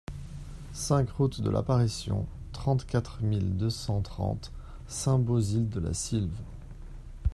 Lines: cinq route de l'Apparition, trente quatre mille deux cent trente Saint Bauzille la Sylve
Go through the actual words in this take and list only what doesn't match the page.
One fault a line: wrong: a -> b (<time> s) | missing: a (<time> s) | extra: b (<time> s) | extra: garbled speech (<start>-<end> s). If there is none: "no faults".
extra: de (5.7 s)